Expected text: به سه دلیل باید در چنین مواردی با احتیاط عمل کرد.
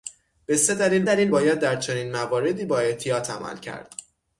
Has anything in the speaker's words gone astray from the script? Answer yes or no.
yes